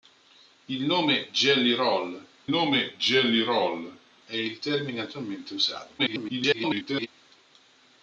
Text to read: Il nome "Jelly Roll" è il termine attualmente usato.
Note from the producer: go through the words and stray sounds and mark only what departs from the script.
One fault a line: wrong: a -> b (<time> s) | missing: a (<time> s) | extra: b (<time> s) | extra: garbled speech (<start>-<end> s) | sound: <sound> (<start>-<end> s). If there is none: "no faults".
extra: nome Jelly Roll (2.5 s)
extra: garbled speech (6.0-7.1 s)